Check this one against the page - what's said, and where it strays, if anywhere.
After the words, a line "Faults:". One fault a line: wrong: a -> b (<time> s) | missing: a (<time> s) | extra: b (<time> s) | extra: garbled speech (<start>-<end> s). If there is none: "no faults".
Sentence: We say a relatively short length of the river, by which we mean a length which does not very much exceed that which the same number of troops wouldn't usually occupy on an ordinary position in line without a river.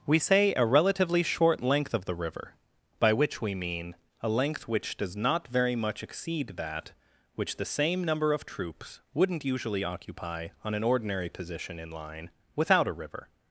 We say a relatively short length of the river, by which we mean a length which does not very much exceed that which the same number of troops wouldn't usually occupy on an ordinary position in line without a river.
Faults:
no faults